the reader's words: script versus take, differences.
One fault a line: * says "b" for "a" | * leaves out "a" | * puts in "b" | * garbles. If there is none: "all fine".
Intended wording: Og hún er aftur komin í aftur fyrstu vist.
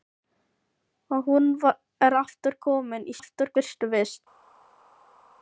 all fine